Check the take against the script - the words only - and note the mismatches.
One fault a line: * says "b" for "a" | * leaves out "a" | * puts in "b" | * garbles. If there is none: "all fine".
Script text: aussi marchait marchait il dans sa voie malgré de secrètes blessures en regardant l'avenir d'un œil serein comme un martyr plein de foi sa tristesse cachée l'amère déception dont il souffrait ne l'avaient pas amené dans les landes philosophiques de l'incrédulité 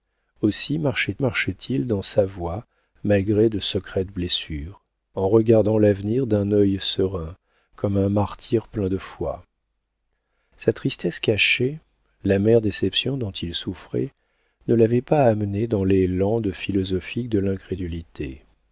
all fine